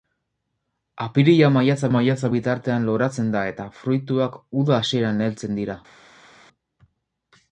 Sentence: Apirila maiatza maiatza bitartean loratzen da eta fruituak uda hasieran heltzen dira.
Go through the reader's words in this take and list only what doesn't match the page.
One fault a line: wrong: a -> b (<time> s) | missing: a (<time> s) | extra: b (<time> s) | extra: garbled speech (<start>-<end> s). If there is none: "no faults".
no faults